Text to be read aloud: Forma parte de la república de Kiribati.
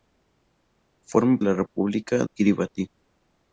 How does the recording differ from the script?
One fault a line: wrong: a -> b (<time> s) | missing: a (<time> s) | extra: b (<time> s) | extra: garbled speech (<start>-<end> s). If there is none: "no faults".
missing: parte de (1.4 s)
missing: de (2.2 s)